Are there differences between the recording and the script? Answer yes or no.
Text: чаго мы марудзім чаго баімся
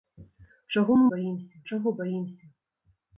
yes